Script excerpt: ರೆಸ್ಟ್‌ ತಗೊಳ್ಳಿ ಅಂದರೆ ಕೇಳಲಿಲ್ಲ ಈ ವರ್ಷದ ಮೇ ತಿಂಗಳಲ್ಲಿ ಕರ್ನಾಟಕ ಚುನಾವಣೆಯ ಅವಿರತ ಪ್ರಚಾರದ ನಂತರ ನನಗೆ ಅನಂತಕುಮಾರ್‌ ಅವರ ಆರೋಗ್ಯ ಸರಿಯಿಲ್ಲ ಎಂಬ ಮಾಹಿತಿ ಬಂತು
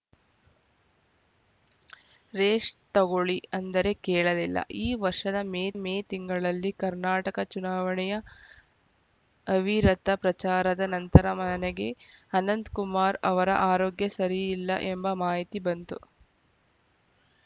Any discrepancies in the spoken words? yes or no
yes